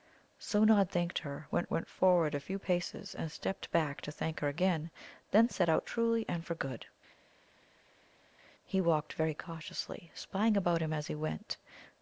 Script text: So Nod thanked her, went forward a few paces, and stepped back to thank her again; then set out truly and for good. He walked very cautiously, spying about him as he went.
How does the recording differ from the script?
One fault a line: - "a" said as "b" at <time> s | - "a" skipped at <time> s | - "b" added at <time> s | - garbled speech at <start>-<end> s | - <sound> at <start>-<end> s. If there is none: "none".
- "went" added at 1.7 s